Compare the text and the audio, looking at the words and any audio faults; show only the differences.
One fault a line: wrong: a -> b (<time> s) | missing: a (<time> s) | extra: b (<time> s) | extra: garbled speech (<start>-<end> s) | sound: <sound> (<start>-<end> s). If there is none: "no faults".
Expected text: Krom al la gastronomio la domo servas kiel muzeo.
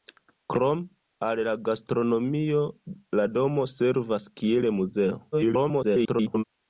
extra: garbled speech (5.3-6.4 s)